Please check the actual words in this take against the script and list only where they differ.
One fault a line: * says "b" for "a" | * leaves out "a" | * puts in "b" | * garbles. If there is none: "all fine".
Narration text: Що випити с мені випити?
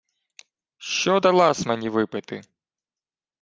* says "дала" for "випити"